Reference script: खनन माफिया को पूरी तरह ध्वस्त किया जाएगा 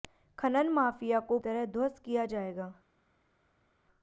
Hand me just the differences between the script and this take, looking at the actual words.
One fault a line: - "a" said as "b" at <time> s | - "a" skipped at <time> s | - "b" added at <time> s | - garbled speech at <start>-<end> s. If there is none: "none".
- "पूरी" skipped at 1.4 s